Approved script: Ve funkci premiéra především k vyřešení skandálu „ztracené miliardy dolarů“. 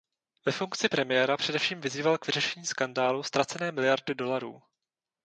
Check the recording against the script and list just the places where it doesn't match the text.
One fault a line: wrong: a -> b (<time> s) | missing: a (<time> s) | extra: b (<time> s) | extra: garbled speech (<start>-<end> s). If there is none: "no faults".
extra: vyzýval (1.8 s)